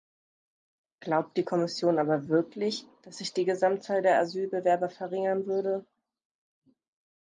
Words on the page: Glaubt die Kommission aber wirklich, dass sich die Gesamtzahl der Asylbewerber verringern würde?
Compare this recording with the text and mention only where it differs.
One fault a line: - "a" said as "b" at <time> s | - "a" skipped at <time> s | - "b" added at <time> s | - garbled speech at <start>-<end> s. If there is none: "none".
none